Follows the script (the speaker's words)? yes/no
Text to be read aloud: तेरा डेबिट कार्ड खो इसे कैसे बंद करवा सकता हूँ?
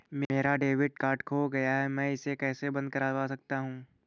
no